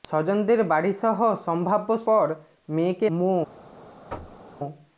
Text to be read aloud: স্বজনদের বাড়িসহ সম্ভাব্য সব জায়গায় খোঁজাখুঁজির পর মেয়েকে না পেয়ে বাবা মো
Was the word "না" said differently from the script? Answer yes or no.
yes